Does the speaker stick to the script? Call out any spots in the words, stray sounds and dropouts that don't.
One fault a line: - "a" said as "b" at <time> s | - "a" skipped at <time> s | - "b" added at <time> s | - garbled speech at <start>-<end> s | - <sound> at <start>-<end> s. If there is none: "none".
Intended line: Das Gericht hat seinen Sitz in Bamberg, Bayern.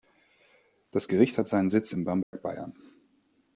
- dropout at 2.2-2.3 s